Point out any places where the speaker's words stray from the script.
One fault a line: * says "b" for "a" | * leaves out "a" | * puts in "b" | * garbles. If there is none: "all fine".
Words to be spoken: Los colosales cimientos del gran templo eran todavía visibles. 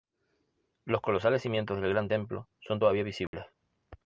* says "son" for "eran"